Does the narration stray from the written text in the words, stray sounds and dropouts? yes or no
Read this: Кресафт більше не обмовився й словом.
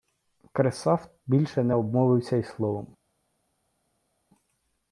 no